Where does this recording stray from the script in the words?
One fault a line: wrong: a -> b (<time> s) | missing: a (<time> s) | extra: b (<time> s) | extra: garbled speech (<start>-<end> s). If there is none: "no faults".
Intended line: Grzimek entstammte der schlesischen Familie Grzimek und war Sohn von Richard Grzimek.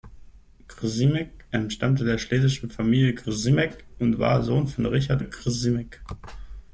no faults